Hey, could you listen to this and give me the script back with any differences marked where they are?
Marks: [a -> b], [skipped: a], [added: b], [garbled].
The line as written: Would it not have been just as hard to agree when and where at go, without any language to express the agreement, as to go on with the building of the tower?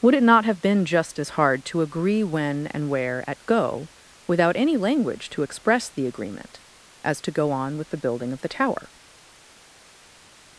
Would it not have been just as hard to agree when and where at go, without any language to express the agreement, as to go on with the building of the tower?